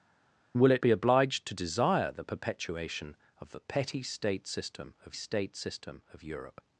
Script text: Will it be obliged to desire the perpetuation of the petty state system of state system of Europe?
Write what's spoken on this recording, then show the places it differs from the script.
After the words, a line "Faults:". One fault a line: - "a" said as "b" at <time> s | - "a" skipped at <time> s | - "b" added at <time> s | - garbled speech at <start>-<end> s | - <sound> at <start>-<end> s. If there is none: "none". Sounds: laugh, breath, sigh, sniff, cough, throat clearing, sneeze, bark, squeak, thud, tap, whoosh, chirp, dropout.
Will it be obliged to desire the perpetuation of the petty state system of state system of Europe?
Faults:
none